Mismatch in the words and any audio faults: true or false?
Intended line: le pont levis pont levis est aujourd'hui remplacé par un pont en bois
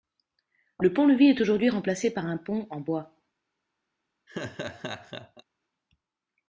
true